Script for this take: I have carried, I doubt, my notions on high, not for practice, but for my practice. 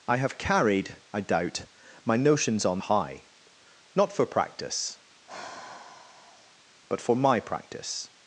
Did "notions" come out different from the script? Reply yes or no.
no